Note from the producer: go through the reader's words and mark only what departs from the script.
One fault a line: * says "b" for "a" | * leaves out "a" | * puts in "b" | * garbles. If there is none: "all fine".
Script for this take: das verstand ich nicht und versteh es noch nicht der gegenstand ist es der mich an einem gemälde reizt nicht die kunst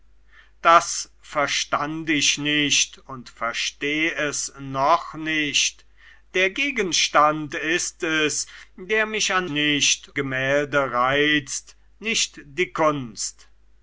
* says "nicht" for "einem"